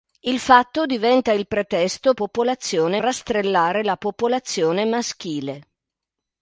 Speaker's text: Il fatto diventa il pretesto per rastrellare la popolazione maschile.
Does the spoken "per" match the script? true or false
false